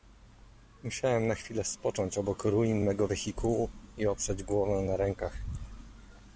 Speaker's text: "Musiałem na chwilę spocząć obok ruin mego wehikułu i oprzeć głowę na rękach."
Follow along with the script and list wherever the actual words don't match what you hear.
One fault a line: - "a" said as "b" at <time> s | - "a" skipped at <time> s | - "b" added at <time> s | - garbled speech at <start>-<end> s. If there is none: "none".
none